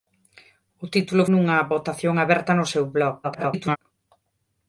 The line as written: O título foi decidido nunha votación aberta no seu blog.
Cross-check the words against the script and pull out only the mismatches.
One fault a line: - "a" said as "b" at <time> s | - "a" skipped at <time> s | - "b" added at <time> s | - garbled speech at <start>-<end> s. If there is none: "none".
- "foi decidido" skipped at 1.2 s
- garbled speech at 3.2-3.8 s